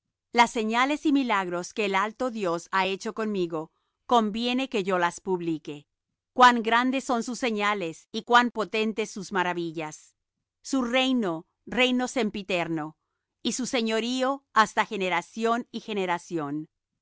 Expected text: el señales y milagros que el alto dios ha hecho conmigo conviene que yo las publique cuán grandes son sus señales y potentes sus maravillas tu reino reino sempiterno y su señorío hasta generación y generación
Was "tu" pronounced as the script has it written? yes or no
no